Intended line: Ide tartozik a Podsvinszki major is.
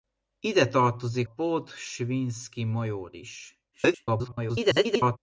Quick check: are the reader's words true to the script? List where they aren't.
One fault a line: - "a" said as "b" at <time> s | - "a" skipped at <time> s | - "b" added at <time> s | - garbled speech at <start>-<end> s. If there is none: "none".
- "a" skipped at 1.3 s
- garbled speech at 3.7-5.2 s